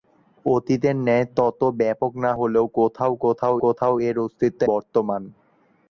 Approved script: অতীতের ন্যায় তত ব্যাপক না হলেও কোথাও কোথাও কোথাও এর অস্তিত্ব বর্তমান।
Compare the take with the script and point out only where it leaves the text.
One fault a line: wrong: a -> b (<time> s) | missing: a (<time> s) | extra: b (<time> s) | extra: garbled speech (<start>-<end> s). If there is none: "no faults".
no faults